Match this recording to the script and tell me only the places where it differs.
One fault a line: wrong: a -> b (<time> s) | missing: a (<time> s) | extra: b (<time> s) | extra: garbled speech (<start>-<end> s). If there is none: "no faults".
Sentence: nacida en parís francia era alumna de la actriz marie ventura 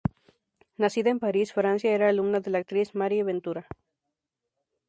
no faults